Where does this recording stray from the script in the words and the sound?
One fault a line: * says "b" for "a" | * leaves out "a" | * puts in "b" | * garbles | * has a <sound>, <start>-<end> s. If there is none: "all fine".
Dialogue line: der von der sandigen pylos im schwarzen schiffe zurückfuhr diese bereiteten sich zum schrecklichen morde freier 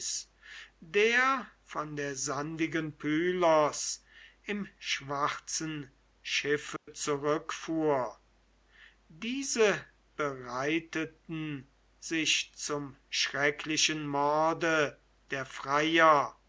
* has a dropout, 6.8-6.9 s
* puts in "der"